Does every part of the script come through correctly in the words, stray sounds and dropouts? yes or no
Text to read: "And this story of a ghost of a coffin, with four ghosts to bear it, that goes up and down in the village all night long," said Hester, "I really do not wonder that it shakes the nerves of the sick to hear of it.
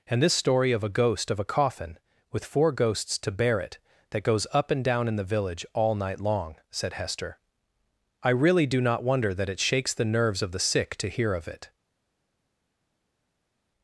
yes